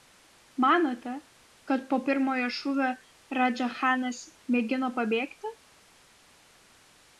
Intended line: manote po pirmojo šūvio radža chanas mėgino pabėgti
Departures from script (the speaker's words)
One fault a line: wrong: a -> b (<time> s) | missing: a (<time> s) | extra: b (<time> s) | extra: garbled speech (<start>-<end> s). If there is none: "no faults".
extra: kad (1.7 s)